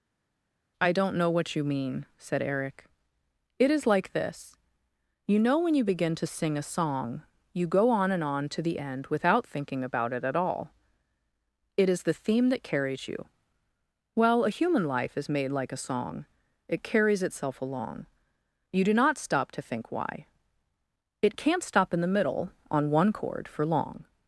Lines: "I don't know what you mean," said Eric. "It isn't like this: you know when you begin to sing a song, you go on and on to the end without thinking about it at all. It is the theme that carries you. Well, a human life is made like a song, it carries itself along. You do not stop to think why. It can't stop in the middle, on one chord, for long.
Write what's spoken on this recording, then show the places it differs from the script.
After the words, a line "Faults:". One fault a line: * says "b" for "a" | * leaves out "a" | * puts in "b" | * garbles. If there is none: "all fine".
"I don't know what you mean," said Eric. "It is like this: you know when you begin to sing a song, you go on and on to the end without thinking about it at all. It is the theme that carries you. Well, a human life is made like a song, it carries itself along. You do not stop to think why. It can't stop in the middle, on one chord, for long.
Faults:
* says "is" for "isn't"